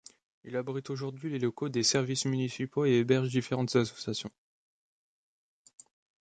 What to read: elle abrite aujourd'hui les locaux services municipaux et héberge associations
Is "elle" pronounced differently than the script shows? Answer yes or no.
yes